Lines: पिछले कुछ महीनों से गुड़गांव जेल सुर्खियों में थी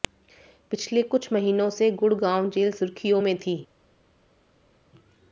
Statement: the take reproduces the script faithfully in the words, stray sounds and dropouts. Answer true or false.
true